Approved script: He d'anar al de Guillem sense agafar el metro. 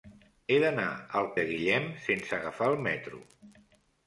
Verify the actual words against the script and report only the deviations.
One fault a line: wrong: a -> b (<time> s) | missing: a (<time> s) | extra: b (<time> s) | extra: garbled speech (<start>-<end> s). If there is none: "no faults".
no faults